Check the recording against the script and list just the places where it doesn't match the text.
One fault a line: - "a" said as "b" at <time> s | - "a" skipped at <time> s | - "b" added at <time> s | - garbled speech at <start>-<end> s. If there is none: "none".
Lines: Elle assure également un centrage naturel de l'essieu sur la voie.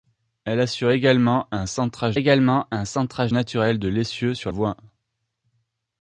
- "également un centrage" added at 2.1 s
- "la" skipped at 4.5 s